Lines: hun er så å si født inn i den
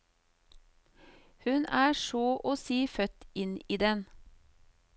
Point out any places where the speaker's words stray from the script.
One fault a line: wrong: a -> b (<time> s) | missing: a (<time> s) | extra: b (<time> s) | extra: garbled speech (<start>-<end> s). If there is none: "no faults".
no faults